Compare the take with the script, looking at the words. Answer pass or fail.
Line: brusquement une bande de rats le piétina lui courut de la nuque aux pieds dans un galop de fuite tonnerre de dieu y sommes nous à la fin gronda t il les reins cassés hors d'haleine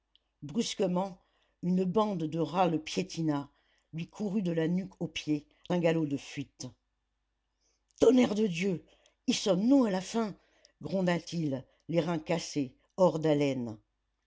fail